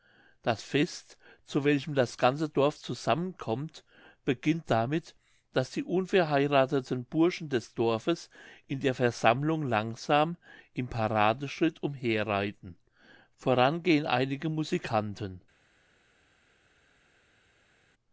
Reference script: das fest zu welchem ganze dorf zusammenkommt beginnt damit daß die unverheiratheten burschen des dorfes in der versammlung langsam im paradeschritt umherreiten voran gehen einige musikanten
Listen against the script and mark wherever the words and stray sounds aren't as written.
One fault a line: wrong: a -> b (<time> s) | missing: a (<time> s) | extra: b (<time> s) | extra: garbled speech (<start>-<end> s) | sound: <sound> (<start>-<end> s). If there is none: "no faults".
extra: das (1.9 s)